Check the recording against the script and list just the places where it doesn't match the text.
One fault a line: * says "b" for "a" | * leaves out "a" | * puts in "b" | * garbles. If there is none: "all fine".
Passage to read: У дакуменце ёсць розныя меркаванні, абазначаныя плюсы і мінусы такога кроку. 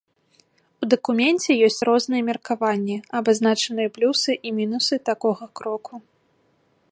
all fine